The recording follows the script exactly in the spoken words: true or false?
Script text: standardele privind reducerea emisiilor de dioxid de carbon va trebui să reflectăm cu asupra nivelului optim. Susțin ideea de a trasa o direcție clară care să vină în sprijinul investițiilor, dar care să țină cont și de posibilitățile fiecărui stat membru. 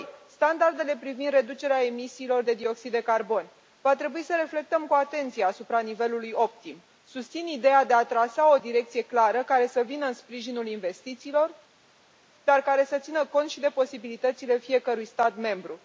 false